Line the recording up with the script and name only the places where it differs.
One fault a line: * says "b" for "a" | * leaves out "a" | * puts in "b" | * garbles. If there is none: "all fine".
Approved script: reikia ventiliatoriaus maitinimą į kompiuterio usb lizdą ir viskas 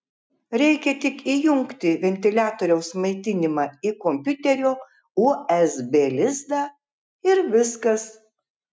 * puts in "tik įjungti"